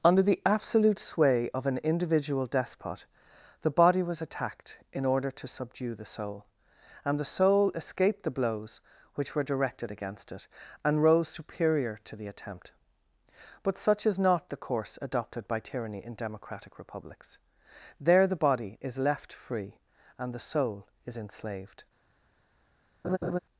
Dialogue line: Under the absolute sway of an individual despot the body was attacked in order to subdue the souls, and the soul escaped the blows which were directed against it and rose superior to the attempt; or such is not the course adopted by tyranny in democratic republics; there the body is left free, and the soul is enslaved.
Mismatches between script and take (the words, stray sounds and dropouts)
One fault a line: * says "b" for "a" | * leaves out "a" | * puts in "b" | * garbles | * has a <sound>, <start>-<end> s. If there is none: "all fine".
* says "soul" for "souls"
* says "but" for "or"
* has a laugh, 23.0-23.4 s